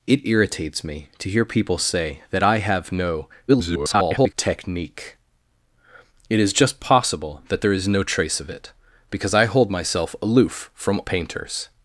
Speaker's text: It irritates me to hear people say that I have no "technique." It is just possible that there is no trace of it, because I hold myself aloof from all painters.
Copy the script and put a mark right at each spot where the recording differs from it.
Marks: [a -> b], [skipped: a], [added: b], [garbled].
It irritates me to hear people say that I have no [garbled] "technique." It is just possible that there is no trace of it, because I hold myself aloof from [skipped: all] painters.